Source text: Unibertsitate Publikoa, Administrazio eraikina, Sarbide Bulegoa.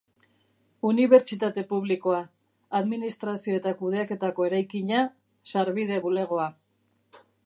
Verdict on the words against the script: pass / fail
fail